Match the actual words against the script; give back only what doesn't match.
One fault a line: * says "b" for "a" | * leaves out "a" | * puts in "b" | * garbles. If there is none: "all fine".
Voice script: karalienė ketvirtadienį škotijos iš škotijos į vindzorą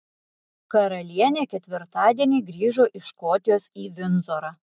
* says "grįžo" for "škotijos"